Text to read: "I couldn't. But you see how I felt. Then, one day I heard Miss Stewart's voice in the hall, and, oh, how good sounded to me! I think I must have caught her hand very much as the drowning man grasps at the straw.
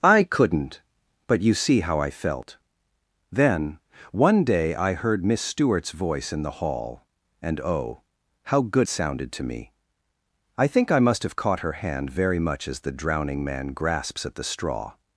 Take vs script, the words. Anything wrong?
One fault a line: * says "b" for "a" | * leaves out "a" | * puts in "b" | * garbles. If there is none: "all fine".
all fine